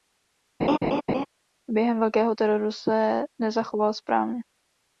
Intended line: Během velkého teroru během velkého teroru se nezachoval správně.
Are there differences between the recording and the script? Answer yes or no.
yes